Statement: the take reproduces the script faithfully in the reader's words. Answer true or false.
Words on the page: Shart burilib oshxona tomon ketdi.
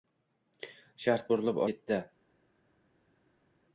false